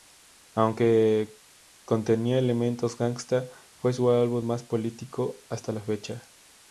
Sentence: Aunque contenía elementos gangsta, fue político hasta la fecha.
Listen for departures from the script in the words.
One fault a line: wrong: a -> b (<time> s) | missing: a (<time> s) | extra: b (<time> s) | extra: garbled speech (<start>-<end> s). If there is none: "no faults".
extra: su álbum más (3.9 s)